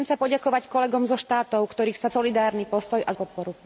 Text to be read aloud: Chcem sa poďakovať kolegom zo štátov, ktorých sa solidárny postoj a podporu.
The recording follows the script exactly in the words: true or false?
true